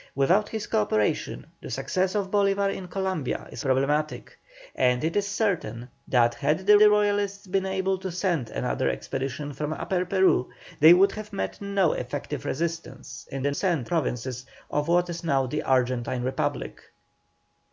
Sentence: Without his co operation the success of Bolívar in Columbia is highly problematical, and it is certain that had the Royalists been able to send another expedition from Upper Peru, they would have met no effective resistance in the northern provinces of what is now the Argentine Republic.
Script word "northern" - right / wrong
wrong